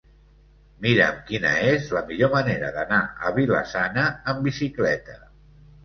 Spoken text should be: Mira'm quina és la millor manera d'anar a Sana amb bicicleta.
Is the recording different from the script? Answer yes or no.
yes